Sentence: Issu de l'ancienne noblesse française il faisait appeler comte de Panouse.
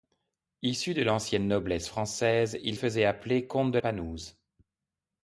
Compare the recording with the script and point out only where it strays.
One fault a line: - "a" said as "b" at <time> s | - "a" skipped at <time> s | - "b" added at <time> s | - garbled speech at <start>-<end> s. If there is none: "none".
none